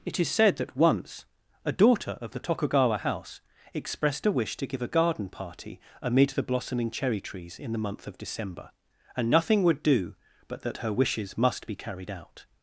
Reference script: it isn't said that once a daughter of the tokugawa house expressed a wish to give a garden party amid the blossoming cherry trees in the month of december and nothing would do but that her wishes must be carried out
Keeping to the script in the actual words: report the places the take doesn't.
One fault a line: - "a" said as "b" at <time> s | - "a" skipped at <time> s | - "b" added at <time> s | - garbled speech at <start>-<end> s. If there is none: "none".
- "isn't" said as "is" at 0.2 s